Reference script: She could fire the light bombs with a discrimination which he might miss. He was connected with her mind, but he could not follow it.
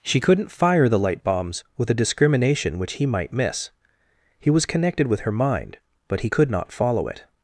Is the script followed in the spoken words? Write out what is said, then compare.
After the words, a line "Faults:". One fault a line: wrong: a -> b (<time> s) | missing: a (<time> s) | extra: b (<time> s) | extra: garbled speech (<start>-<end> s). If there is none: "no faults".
She couldn't fire the light bombs with a discrimination which he might miss. He was connected with her mind, but he could not follow it.
Faults:
wrong: could -> couldn't (0.2 s)